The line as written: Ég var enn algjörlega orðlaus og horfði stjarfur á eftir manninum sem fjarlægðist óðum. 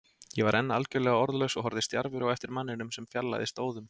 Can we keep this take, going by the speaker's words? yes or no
yes